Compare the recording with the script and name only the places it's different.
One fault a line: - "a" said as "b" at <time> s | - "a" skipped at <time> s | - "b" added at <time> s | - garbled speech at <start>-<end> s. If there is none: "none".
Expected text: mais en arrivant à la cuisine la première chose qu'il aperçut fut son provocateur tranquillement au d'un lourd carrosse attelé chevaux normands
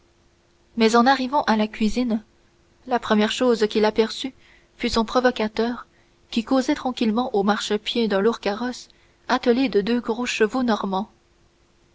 - "qui causait" added at 6.3 s
- "marchepied" added at 7.4 s
- "de deux gros" added at 9.7 s